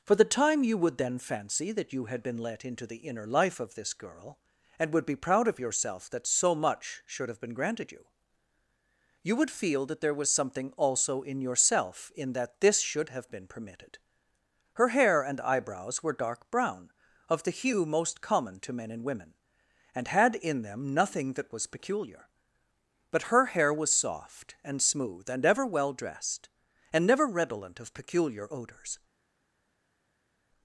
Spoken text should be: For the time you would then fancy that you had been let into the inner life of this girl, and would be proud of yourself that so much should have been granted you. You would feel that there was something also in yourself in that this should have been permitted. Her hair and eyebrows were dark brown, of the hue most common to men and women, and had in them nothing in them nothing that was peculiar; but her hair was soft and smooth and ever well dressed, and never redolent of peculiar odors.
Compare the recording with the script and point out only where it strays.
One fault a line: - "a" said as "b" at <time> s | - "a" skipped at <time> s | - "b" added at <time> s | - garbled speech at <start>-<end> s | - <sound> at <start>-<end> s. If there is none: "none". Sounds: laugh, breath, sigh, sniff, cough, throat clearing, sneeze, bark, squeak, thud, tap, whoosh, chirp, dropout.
- "in them nothing" skipped at 21.3 s